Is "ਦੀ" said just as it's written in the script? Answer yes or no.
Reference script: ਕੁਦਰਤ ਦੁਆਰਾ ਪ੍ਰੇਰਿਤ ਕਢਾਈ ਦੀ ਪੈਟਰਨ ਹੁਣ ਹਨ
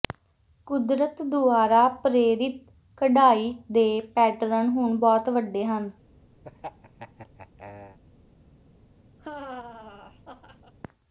no